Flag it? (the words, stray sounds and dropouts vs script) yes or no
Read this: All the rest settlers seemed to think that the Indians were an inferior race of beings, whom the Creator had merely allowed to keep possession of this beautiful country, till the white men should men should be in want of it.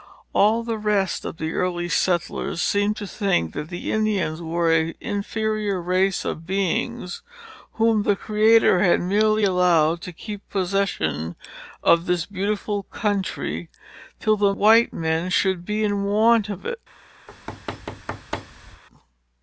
yes